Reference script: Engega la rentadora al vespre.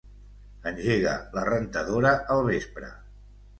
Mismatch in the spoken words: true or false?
false